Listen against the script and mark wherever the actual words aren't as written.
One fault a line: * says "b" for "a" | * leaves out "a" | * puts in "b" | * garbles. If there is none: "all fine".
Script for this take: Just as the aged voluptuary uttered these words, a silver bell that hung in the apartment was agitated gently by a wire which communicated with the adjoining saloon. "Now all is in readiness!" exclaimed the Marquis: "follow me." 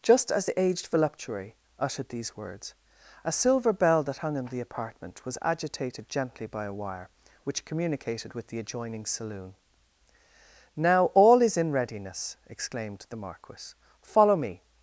all fine